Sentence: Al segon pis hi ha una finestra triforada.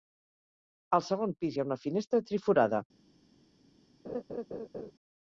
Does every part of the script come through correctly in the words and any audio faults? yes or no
no